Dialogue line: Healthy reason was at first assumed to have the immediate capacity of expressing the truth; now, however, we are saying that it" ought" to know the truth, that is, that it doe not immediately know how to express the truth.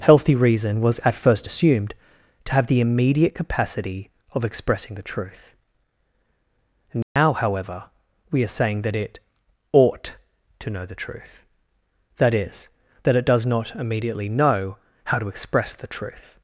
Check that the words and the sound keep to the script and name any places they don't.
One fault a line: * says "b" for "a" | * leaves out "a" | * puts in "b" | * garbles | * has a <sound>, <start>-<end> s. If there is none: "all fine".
* has a dropout, 7.0-7.2 s
* says "does" for "doe"